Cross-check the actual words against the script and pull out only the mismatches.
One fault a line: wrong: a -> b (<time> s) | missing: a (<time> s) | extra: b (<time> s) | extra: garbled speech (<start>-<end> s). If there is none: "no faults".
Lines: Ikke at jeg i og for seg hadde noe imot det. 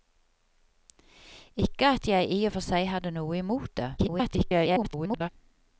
extra: garbled speech (4.0-5.3 s)